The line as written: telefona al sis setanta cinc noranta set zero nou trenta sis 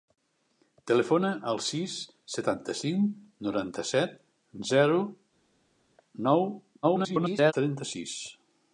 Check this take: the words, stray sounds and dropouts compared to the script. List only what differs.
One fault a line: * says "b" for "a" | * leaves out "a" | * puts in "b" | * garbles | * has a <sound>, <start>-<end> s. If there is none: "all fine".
* garbles